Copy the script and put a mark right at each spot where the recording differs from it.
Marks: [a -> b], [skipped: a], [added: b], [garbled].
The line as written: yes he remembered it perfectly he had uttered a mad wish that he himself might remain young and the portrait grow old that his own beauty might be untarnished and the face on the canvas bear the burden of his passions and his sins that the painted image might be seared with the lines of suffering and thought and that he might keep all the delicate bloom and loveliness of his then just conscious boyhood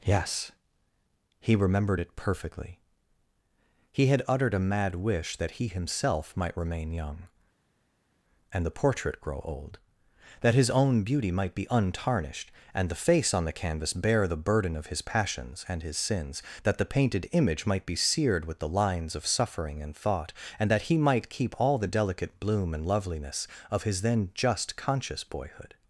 yes he remembered it perfectly he had uttered a mad wish that he himself might remain young and the portrait grow old that his own beauty might be untarnished and the face on the canvas bear the burden of his passions and his sins that the painted image might be seared with the lines of suffering and thought and that he might keep all the delicate bloom and loveliness of his then just conscious boyhood